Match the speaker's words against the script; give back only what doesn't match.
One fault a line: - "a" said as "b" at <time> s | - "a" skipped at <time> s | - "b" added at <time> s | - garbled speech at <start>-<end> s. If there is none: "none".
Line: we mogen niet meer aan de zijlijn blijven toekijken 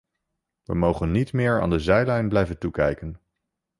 none